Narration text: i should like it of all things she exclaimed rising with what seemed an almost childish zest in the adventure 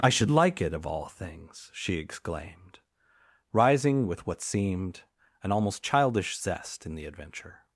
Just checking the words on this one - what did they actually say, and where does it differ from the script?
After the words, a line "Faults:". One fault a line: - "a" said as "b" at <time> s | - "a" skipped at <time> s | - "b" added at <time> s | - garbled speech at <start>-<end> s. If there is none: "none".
i should like it of all things she exclaimed rising with what seemed an almost childish zest in the adventure
Faults:
none